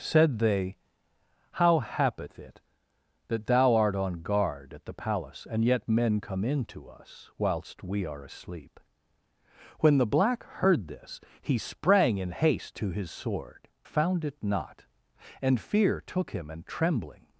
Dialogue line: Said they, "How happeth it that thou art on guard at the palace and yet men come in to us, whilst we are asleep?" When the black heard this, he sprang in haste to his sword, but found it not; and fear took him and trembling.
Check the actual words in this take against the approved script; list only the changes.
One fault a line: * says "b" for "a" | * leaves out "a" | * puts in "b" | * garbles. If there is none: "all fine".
* leaves out "but"